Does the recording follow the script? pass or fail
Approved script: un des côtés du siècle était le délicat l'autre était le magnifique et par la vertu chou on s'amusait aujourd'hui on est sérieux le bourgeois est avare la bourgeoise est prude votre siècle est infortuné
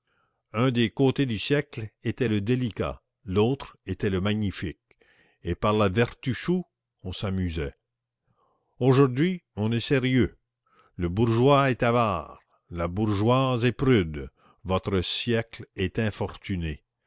pass